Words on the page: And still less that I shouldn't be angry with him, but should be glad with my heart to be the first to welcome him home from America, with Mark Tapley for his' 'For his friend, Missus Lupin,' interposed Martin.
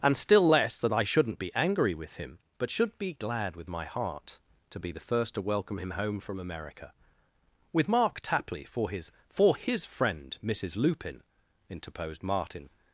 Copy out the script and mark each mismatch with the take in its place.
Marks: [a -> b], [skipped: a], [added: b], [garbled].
And still less that I shouldn't be angry with him, but should be glad with my heart to be the first to welcome him home from America, with Mark Tapley for his' 'For his friend, Missus Lupin,' interposed Martin.